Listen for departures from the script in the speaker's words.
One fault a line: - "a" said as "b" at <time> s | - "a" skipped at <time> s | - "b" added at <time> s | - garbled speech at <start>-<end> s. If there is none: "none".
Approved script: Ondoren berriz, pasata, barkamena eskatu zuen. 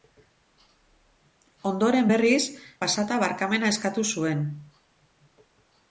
none